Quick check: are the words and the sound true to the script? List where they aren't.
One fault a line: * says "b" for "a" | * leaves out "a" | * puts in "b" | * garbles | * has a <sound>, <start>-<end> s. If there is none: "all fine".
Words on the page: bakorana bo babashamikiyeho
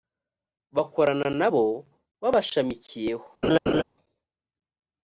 * puts in "na"
* has a laugh, 3.4-3.8 s